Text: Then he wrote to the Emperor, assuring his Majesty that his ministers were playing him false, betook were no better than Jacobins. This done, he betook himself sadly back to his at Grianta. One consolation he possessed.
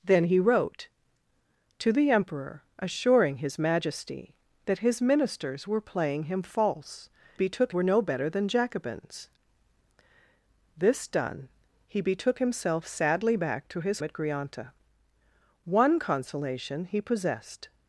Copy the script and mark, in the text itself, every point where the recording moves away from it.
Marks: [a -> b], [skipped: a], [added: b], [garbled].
Then he wrote to the Emperor, assuring his Majesty that his ministers were playing him false, betook were no better than Jacobins. This done, he betook himself sadly back to his at Grianta. One consolation he possessed.